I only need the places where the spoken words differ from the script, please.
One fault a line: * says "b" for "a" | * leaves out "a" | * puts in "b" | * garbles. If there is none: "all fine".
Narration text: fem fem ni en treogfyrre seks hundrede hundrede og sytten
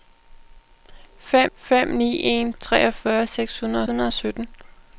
all fine